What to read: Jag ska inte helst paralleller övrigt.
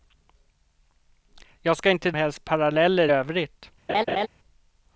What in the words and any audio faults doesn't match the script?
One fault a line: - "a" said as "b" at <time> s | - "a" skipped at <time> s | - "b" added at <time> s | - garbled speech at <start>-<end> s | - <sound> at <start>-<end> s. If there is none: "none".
- laugh at 3.9-4.3 s